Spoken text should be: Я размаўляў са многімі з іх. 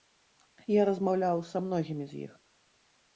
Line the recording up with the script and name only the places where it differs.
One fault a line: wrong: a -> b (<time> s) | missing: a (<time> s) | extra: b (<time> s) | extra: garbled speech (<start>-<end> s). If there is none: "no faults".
no faults